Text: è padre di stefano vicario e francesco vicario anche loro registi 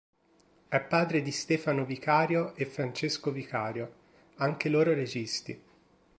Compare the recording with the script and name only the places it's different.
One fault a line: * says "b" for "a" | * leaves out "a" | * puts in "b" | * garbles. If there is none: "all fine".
all fine